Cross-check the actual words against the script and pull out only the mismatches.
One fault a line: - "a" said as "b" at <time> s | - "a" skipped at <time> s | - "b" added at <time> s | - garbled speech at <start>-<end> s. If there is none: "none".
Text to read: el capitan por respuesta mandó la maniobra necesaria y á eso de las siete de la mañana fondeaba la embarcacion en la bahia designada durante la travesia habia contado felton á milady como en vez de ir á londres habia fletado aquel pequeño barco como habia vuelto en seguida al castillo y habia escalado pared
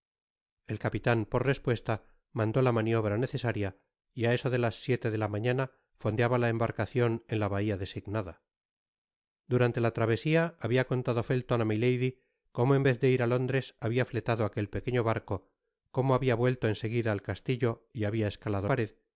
none